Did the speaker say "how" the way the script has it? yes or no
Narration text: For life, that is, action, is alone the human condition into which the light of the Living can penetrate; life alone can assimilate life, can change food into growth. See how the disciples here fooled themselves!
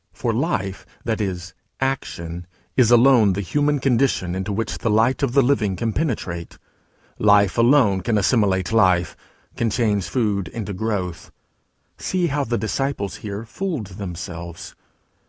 yes